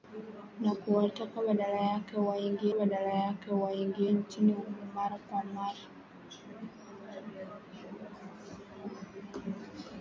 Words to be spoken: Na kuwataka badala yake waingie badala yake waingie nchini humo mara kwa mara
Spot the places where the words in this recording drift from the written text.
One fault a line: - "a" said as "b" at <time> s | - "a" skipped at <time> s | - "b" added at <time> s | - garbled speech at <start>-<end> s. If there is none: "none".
none